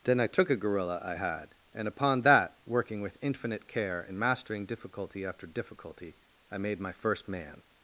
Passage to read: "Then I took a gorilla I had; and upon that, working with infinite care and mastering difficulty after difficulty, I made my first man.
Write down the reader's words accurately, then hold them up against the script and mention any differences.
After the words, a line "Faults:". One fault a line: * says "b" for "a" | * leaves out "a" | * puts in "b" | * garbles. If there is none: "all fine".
"Then I took a gorilla I had; and upon that, working with infinite care and mastering difficulty after difficulty, I made my first man.
Faults:
all fine